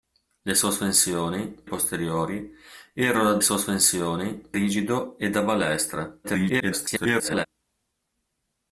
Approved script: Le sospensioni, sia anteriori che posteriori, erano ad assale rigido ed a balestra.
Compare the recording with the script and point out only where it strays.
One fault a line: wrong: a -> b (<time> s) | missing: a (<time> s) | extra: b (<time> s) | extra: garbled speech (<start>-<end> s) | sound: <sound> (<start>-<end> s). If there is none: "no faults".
missing: sia anteriori che (1.6 s)
wrong: assale -> sospensioni (3.4 s)
extra: garbled speech (6.2-7.5 s)